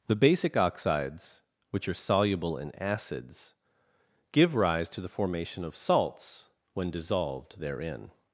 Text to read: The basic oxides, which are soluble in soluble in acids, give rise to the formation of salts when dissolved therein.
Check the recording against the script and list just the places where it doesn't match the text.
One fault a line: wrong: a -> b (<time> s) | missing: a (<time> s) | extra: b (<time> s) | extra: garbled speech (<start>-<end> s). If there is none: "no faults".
missing: soluble in (2.7 s)